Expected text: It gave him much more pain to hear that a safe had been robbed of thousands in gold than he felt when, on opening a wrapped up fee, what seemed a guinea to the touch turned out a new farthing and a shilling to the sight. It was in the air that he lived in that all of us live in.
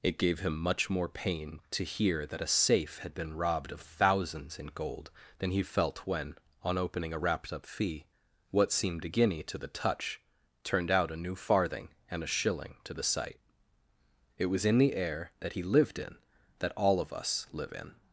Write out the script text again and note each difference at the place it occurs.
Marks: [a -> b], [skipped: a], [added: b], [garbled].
It gave him much more pain to hear that a safe had been robbed of thousands in gold than he felt when, on opening a wrapped up fee, what seemed a guinea to the touch turned out a new farthing and a shilling to the sight. It was in the air that he lived in that all of us live in.